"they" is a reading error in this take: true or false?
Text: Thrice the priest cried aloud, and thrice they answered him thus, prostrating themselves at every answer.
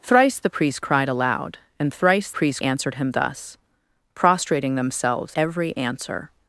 true